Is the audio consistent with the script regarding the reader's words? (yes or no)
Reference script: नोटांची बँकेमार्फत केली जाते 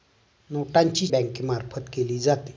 yes